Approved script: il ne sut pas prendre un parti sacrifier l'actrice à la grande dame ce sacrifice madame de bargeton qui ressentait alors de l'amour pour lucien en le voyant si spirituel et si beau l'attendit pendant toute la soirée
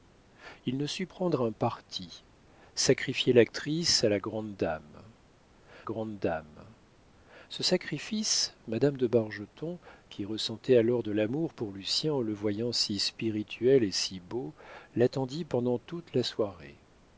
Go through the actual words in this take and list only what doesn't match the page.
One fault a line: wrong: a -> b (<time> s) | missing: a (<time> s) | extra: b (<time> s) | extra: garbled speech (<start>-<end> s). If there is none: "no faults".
missing: pas (1.1 s)
extra: grande dame (5.8 s)